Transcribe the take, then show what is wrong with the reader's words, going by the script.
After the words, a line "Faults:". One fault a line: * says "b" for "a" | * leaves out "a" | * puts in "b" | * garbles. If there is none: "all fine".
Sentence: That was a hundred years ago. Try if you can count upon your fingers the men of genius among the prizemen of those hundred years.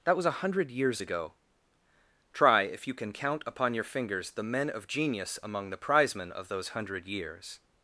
That was a hundred years ago. Try if you can count upon your fingers the men of genius among the prizemen of those hundred years.
Faults:
all fine